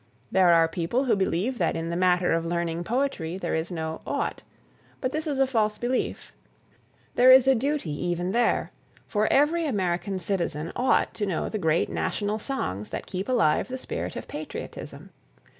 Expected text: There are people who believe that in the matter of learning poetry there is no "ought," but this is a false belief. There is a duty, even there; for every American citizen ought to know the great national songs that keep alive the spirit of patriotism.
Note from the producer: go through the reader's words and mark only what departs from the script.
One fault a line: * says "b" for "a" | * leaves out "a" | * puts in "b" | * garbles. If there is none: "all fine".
all fine